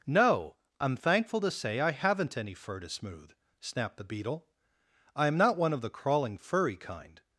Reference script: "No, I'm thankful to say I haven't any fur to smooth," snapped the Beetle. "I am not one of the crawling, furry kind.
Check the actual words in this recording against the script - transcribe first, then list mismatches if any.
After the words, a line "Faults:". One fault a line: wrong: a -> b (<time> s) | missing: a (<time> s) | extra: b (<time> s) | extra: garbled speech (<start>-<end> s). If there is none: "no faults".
"No, I'm thankful to say I haven't any fur to smooth," snapped the Beetle. "I am not one of the crawling, furry kind.
Faults:
no faults